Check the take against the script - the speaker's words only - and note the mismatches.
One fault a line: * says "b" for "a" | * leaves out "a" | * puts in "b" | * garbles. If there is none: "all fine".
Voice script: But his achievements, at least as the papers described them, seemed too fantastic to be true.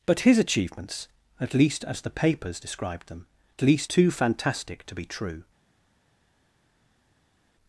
* says "least" for "seemed"